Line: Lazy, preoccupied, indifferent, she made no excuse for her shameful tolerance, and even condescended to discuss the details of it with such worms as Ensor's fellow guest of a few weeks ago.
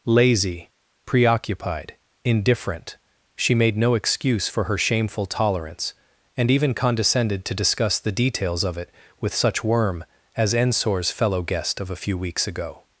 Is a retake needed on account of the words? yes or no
yes